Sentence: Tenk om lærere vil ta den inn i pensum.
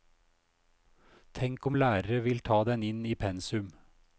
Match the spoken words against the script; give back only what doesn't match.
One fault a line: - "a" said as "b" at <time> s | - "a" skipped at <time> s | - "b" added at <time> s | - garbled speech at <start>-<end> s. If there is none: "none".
none